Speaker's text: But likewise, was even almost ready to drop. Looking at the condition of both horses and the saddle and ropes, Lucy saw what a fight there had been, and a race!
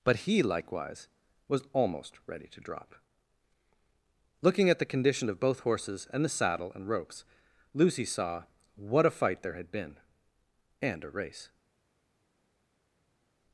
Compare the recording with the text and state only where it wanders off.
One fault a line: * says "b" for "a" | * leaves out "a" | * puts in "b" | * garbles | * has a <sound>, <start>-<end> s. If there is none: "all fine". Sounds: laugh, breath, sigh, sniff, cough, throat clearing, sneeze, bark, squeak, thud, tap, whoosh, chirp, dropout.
* puts in "he"
* leaves out "even"